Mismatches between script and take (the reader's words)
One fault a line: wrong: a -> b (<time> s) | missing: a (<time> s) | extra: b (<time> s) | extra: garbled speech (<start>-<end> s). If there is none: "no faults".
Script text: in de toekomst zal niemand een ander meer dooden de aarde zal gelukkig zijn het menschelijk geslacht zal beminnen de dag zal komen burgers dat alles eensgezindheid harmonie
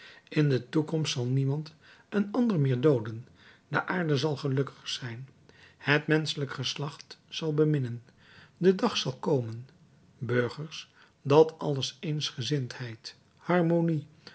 no faults